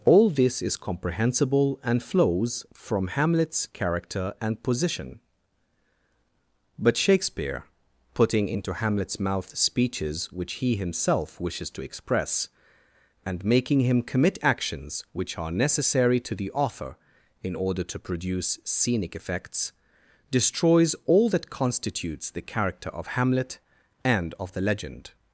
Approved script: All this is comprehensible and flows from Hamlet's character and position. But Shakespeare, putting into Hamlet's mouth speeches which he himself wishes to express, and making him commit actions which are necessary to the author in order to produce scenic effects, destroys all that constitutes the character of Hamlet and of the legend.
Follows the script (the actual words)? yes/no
yes